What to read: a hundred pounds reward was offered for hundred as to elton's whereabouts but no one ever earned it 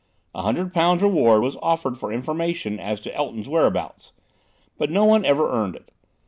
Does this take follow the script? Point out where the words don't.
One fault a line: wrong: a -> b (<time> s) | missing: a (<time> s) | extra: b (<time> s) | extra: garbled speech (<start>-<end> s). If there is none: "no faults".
wrong: hundred -> information (2.1 s)